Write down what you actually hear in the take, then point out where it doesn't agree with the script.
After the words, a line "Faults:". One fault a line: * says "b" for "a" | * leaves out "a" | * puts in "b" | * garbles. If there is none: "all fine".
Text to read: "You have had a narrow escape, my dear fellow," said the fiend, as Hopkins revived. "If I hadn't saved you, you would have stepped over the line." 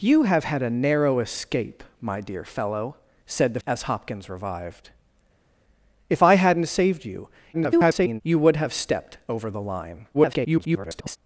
"You have had a narrow escape, my dear fellow," said the as Hopkins revived. "If I hadn't saved you, [garbled] you would have stepped over the line." [garbled]
Faults:
* leaves out "fiend"
* garbles
* garbles